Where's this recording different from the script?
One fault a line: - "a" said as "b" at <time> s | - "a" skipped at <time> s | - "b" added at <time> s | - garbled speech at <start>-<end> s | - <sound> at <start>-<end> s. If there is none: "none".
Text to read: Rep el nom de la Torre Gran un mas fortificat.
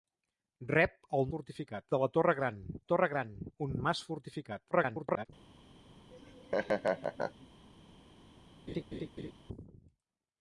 - "nom" said as "fortificat" at 1.3 s
- "Torre Gran" added at 2.9 s
- garbled speech at 4.7-5.3 s
- laugh at 6.1-7.5 s
- laugh at 8.7-9.3 s